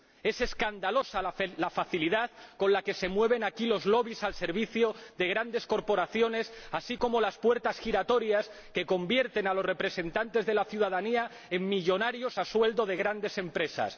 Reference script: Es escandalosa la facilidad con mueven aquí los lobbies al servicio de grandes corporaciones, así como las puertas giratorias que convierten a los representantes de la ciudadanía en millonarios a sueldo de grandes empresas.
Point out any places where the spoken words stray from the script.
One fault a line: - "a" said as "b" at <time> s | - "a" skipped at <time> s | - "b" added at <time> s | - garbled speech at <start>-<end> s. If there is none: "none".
- "la que se" added at 2.7 s